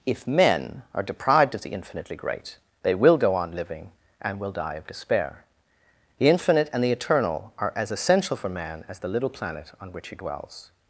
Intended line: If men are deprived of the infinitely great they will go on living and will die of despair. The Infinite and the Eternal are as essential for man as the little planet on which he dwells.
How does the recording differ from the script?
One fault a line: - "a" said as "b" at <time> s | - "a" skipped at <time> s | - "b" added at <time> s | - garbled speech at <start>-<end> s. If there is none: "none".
none